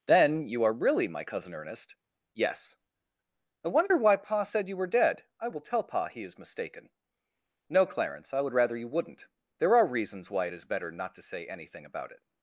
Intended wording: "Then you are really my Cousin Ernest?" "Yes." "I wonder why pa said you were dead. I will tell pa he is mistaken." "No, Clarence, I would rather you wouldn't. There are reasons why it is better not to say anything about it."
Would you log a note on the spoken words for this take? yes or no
no